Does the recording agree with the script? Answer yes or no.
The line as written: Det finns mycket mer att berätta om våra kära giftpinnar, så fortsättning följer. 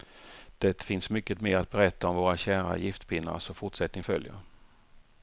yes